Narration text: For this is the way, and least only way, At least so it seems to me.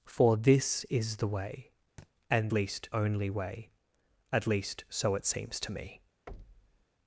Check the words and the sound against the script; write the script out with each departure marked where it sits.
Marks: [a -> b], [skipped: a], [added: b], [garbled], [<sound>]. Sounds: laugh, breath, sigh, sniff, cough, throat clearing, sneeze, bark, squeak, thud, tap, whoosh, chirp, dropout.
For this is the way, [thud] and least only way, At least so it seems to me. [thud]